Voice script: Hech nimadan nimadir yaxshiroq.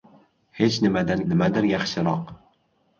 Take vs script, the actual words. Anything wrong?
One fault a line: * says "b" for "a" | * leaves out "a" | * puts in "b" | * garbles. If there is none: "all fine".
all fine